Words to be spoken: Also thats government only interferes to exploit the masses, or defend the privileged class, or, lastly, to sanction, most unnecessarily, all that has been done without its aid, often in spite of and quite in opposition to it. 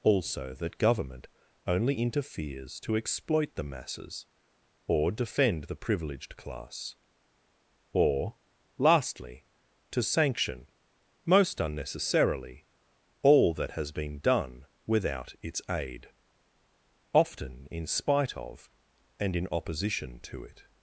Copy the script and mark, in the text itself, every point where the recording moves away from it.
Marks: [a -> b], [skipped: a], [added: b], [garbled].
Also [thats -> that] government only interferes to exploit the masses, or defend the privileged class, or, lastly, to sanction, most unnecessarily, all that has been done without its aid, often in spite of and [skipped: quite] in opposition to it.